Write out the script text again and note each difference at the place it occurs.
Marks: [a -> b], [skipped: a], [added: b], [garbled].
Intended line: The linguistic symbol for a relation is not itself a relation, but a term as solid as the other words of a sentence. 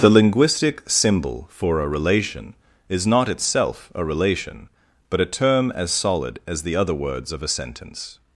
The linguistic symbol for a relation is not itself a relation, but a term as solid as the other words of a sentence.